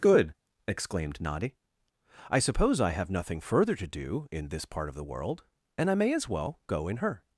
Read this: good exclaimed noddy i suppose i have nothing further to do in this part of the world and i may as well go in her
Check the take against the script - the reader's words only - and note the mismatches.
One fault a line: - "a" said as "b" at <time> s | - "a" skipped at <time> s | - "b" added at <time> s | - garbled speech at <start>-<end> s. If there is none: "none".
none